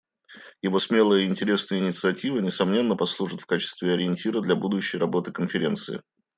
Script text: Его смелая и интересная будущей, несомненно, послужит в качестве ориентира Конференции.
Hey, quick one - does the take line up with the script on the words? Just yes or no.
no